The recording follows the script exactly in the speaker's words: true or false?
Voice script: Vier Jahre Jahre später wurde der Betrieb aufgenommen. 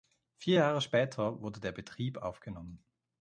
false